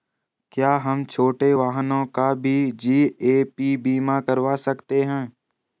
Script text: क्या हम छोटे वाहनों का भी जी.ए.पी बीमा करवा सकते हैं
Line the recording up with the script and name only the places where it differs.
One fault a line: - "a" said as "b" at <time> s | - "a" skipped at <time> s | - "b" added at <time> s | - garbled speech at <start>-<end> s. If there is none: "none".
none